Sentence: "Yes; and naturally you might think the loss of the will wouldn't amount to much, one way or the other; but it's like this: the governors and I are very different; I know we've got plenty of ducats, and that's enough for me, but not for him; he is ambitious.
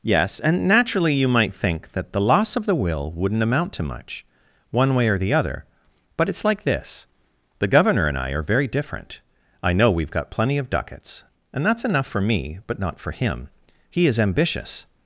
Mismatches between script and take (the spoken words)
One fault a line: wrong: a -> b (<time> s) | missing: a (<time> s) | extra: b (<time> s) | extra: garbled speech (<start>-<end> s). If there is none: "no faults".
extra: that (1.9 s)
wrong: governors -> governor (7.7 s)